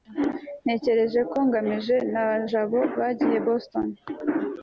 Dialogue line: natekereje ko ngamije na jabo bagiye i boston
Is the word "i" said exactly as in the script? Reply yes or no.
yes